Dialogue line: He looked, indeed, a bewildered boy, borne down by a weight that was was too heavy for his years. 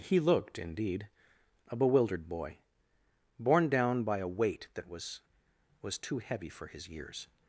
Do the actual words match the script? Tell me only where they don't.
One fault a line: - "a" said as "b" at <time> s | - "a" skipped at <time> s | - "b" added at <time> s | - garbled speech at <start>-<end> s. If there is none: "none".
none